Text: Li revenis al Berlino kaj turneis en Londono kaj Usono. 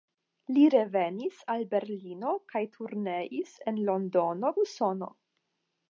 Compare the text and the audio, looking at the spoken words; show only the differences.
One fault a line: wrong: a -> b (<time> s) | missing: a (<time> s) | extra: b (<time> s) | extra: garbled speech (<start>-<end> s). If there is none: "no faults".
missing: kaj (4.5 s)